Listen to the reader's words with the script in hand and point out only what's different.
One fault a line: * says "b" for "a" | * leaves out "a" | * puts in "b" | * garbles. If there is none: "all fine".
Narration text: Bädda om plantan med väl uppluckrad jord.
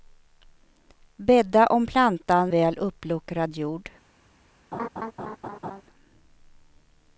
* leaves out "med"